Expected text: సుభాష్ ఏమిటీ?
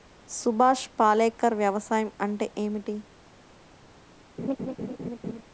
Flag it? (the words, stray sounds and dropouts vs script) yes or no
yes